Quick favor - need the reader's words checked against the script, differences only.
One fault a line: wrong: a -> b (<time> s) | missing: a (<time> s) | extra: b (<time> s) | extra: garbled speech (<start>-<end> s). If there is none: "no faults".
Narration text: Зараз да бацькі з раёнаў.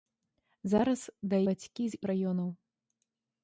no faults